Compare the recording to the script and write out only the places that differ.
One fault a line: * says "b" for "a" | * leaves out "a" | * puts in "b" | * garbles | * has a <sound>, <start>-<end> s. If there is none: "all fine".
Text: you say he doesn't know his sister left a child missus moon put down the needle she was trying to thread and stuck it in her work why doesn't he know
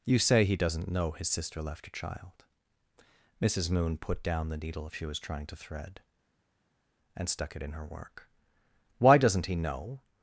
all fine